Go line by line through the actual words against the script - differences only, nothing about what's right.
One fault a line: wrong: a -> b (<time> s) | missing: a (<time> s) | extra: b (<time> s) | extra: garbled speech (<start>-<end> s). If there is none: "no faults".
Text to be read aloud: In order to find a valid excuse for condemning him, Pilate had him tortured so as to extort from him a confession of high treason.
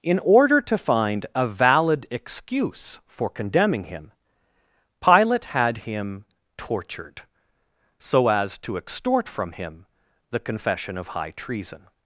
wrong: a -> the (10.3 s)